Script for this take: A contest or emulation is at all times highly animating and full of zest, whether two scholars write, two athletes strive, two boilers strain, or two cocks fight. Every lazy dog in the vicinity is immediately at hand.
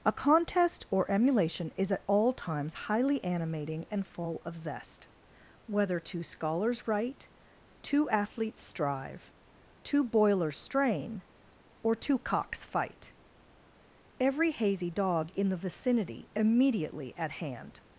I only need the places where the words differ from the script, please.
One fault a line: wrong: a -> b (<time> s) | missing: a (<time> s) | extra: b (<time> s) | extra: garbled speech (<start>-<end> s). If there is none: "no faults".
wrong: lazy -> hazy (14.5 s)
missing: is (16.3 s)